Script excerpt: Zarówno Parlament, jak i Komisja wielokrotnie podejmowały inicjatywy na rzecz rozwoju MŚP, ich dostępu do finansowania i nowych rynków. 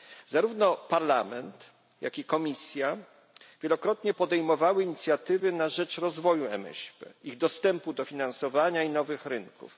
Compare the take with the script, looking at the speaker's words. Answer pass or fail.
pass